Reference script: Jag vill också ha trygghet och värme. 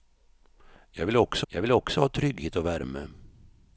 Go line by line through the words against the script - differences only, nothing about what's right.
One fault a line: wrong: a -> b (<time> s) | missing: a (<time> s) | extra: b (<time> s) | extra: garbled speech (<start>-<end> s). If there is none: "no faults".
extra: jag vill också (1.5 s)